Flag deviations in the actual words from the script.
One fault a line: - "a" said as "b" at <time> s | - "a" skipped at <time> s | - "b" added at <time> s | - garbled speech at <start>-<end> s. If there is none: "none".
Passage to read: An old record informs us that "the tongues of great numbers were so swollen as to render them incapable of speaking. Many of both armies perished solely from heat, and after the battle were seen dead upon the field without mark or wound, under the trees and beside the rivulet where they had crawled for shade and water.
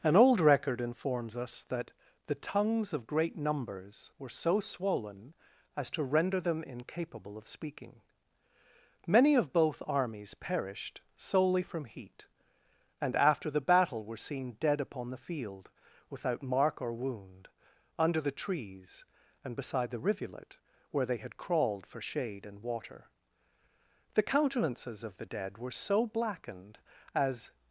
- "The countenances of the dead were so blackened as" added at 24.1 s